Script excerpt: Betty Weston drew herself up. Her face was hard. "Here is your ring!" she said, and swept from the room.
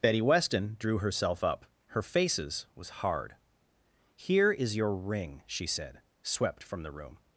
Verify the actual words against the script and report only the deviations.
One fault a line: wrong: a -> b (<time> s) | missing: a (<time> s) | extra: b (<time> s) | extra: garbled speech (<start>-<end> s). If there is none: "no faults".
wrong: face -> faces (2.0 s)
missing: and (6.0 s)